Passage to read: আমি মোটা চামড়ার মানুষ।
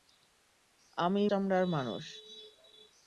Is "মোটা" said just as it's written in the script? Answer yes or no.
no